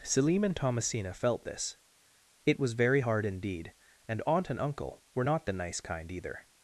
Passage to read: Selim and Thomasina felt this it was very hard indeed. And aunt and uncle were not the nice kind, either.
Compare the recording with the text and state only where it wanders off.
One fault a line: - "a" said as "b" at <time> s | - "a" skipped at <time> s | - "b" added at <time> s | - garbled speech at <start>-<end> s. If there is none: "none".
none